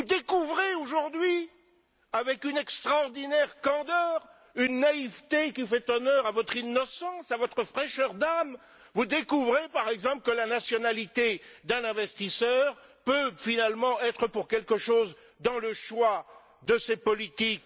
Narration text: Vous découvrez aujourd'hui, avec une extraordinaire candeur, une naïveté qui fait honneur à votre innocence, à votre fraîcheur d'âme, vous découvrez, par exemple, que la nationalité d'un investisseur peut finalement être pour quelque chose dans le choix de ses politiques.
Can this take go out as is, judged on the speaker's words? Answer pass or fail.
pass